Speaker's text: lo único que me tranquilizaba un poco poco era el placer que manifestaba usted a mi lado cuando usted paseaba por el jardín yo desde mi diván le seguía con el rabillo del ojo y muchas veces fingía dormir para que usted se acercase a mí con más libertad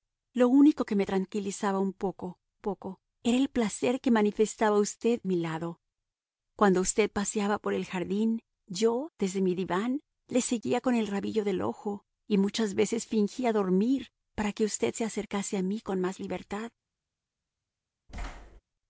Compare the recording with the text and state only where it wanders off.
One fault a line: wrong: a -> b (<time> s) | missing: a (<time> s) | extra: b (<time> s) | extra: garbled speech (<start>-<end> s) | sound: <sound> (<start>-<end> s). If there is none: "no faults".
sound: thud (18.1-18.6 s)